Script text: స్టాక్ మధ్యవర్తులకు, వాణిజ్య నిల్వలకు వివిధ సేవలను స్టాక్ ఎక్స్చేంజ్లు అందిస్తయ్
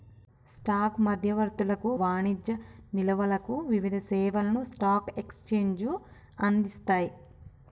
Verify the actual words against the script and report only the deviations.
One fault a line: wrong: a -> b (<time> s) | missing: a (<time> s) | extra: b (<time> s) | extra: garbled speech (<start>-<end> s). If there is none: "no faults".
no faults